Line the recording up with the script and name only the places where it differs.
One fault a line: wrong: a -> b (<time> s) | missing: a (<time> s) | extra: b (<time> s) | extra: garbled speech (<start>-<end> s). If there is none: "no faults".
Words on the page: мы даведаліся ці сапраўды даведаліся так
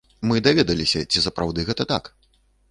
wrong: даведаліся -> гэта (1.7 s)